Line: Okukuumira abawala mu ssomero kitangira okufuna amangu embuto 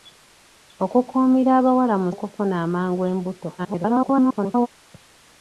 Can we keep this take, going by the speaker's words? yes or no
no